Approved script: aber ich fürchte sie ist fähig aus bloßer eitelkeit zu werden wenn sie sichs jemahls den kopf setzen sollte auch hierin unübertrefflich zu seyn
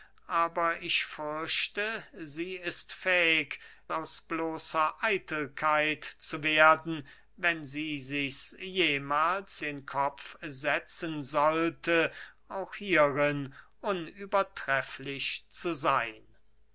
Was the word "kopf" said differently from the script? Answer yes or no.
no